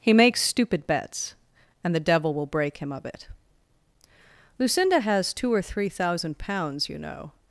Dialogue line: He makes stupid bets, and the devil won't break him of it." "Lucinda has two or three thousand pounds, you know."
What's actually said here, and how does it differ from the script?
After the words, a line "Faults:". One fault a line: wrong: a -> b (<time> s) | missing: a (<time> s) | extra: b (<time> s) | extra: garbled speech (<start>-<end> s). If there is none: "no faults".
He makes stupid bets, and the devil will break him of it." "Lucinda has two or three thousand pounds, you know."
Faults:
wrong: won't -> will (2.3 s)